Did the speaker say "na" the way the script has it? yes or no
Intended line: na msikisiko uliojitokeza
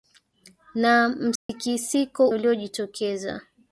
yes